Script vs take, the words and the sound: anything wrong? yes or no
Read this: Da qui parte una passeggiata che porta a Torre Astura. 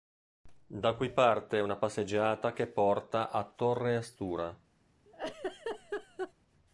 yes